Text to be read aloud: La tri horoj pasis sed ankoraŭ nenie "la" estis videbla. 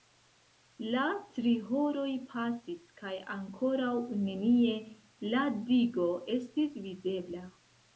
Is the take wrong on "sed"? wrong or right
wrong